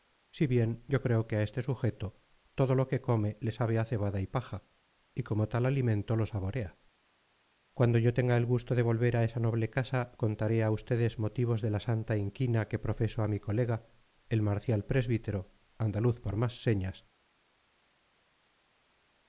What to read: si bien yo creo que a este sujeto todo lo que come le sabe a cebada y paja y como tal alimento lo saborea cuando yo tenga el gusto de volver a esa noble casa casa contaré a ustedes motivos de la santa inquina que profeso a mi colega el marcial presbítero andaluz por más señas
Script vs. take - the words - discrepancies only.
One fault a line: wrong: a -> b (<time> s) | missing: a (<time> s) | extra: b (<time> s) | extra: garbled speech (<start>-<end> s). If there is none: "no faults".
missing: casa (10.1 s)